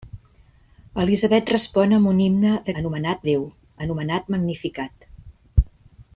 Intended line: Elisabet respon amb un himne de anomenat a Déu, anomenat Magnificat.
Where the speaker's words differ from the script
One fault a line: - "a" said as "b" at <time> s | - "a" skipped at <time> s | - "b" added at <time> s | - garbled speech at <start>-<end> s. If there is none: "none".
none